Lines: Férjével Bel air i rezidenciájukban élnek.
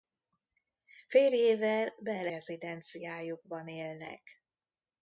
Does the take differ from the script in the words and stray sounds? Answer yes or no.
yes